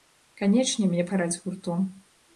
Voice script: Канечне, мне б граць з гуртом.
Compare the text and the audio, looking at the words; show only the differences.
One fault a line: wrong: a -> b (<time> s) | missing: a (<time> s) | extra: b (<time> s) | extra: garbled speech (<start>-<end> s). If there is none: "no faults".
no faults